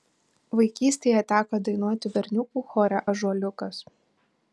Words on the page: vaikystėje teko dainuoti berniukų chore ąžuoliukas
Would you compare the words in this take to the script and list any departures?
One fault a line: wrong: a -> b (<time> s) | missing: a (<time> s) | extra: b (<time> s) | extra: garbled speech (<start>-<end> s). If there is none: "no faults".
no faults